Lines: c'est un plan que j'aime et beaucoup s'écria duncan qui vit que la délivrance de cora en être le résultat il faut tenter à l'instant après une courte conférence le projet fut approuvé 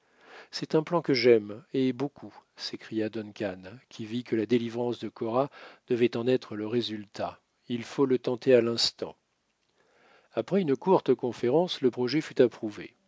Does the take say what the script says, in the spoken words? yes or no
no